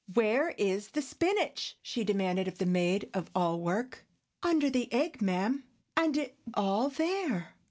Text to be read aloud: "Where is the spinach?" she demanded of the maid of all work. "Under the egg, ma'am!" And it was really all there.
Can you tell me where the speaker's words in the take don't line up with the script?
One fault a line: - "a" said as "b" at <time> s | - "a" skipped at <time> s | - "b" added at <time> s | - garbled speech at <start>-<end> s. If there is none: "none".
- "was really" skipped at 6.4 s